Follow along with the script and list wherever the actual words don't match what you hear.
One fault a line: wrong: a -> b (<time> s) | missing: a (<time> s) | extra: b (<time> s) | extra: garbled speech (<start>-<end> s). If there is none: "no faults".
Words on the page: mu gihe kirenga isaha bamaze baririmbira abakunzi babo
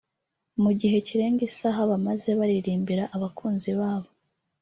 no faults